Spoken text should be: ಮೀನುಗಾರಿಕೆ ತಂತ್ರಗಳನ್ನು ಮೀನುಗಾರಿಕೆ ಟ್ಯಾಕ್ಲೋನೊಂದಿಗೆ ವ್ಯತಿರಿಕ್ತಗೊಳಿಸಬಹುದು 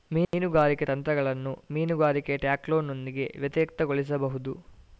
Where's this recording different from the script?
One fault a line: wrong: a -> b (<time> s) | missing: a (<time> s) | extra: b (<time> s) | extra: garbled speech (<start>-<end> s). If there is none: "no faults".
no faults